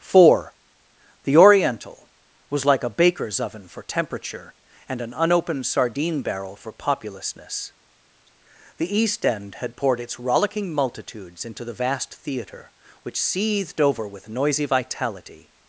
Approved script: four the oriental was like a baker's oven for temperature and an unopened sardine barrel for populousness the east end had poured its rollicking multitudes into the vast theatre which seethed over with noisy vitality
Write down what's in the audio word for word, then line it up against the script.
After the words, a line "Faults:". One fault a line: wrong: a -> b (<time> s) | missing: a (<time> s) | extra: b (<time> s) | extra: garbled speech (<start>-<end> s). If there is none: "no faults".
four the oriental was like a baker's oven for temperature and an unopened sardine barrel for populousness the east end had poured its rollicking multitudes into the vast theatre which seethed over with noisy vitality
Faults:
no faults